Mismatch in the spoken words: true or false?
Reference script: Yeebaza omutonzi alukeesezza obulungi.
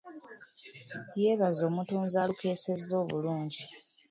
false